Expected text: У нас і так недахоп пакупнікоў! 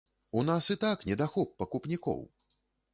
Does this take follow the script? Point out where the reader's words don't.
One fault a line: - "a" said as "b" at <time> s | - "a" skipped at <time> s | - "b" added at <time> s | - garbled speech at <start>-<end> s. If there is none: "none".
none